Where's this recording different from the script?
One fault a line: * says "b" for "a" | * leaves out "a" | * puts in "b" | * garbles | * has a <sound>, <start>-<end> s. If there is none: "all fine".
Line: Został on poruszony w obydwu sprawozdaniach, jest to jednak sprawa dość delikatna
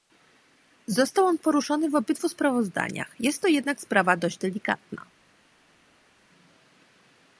all fine